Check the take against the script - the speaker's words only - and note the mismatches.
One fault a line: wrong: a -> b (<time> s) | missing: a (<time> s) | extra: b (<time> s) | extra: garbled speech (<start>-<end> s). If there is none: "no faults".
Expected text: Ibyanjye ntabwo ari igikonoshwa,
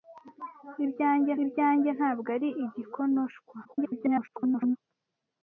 extra: ibyanjye (1.4 s)
extra: garbled speech (3.6-4.8 s)